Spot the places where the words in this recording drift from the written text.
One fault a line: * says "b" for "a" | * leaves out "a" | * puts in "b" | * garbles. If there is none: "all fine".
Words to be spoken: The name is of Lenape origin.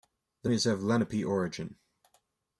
* leaves out "name"